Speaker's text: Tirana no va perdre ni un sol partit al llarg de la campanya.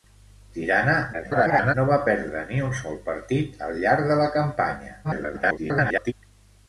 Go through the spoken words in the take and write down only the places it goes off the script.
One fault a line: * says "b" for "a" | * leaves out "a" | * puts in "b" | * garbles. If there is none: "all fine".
* garbles
* garbles